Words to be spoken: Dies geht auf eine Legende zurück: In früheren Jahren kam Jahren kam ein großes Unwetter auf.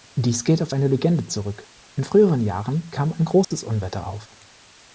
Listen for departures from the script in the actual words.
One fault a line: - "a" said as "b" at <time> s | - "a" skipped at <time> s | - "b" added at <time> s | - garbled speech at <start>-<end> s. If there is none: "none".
- "Jahren kam" skipped at 3.1 s